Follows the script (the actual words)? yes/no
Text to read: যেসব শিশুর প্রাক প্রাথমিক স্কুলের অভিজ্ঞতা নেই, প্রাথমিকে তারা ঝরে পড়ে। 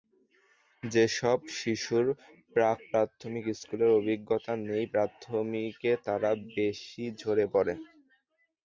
no